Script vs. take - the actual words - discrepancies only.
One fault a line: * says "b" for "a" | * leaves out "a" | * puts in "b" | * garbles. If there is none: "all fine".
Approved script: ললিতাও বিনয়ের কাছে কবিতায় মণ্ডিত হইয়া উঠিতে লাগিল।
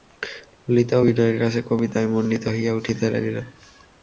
all fine